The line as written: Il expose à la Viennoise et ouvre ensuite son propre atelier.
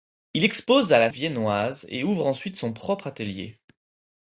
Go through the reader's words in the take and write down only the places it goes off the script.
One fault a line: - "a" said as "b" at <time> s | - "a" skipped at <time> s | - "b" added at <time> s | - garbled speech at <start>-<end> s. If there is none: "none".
none